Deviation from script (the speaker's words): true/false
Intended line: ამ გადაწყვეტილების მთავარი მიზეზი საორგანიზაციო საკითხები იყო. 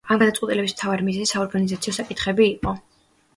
false